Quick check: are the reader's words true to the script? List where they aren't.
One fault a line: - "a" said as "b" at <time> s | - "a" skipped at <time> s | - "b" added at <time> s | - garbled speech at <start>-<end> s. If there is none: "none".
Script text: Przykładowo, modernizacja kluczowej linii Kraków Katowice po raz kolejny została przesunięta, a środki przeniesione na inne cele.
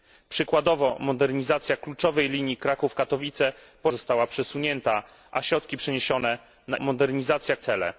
- "raz kolejny" skipped at 3.9 s
- "inne" said as "modernizacja" at 6.8 s